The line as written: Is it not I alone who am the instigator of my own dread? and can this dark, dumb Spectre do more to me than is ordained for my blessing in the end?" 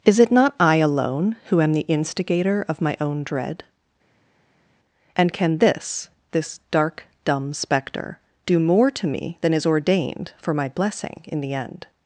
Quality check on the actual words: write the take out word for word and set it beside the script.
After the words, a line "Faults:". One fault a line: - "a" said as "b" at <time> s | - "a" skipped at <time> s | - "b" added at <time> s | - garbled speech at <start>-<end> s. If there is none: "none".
Is it not I alone who am the instigator of my own dread? and can this this dark, dumb Spectre do more to me than is ordained for my blessing in the end?"
Faults:
- "this" added at 6.3 s